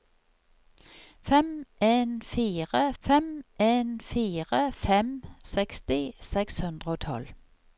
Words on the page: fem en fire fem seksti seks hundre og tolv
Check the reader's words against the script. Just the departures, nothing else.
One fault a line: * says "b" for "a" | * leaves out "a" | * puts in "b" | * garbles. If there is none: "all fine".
* puts in "en fire fem"